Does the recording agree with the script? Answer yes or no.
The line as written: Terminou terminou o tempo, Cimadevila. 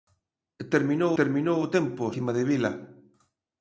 yes